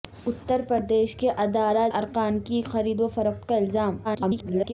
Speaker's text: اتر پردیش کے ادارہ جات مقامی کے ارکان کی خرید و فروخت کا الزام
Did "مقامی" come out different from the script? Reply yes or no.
yes